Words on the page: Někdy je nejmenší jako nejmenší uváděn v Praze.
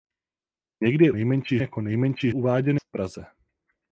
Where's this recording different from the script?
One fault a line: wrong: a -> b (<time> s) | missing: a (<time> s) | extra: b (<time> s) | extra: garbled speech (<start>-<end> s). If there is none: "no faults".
no faults